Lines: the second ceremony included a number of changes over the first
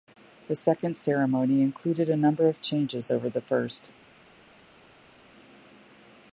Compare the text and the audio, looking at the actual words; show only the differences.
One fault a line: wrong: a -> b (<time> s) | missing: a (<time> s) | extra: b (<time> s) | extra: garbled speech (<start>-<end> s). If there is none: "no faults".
no faults